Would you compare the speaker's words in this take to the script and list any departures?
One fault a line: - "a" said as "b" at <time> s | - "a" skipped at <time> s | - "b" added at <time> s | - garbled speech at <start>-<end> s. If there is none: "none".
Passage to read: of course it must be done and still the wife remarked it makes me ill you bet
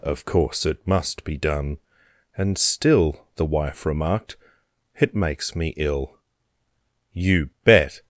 none